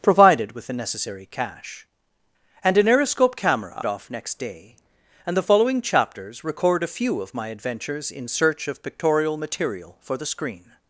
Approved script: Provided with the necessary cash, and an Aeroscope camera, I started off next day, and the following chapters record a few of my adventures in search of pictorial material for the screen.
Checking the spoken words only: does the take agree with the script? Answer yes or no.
no